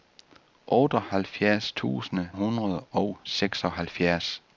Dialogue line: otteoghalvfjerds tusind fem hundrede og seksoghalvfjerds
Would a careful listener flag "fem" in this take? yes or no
yes